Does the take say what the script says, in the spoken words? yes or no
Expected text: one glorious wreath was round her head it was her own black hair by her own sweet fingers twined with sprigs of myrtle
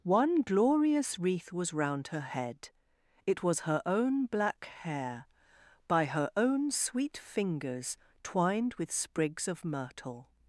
yes